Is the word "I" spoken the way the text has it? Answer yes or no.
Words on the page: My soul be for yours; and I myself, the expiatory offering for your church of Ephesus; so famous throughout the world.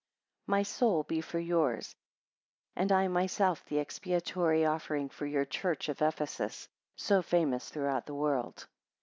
yes